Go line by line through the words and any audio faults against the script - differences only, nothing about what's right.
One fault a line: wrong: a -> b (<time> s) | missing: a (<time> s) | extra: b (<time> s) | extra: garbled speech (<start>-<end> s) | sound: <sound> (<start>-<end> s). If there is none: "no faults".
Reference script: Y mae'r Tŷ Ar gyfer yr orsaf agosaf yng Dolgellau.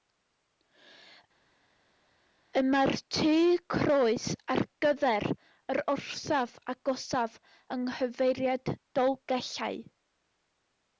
extra: Croes (3.7 s)
extra: nghyfeiriad (7.9 s)